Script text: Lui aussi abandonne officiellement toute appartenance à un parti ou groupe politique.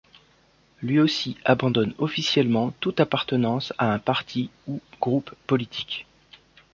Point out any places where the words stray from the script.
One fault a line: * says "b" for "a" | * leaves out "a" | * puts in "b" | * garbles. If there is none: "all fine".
all fine